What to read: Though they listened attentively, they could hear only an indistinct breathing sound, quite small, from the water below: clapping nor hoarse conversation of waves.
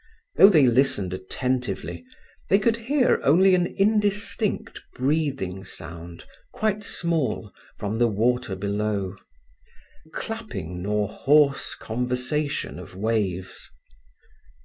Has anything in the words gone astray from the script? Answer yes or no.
no